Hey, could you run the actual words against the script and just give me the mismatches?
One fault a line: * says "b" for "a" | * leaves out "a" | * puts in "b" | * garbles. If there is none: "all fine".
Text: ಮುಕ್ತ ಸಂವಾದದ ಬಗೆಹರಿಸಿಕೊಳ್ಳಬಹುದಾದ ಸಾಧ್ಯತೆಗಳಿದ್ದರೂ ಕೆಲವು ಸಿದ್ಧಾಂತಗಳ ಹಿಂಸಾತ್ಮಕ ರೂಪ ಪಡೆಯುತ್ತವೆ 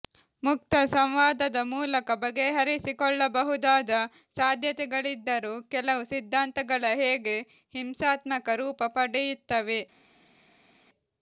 * puts in "ಮೂಲಕ"
* puts in "ಹೇಗೆ"